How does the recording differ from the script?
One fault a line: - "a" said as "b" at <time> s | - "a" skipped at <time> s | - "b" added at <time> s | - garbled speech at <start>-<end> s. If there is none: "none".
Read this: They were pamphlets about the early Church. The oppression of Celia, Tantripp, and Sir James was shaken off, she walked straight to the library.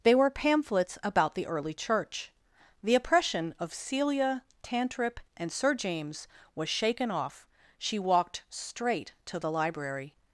none